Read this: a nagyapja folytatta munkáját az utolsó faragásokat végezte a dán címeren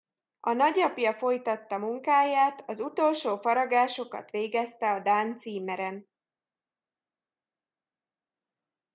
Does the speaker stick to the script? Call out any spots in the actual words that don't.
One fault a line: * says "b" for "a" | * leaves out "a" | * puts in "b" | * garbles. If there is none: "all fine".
all fine